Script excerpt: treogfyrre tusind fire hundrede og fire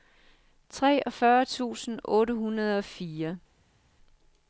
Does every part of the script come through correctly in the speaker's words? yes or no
no